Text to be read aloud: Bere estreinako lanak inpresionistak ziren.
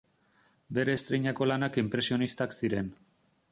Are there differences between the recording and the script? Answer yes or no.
no